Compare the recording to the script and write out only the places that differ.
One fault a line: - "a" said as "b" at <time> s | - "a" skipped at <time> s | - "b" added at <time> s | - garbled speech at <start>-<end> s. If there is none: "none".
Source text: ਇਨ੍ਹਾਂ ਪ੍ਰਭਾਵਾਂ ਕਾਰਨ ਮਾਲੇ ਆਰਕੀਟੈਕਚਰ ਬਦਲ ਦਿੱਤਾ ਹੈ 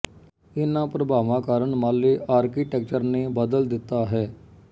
- "ਨੇ" added at 3.0 s